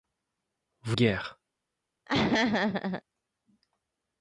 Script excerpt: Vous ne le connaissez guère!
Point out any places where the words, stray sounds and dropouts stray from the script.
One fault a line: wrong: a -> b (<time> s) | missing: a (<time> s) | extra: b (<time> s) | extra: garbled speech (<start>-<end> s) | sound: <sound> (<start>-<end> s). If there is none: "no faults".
missing: ne le connaissez (1.0 s)
sound: laugh (2.1-3.0 s)